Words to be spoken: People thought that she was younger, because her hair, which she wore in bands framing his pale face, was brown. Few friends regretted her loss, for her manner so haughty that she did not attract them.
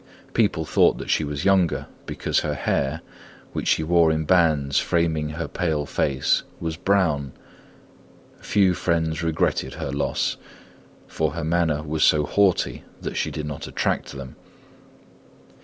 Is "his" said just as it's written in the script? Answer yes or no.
no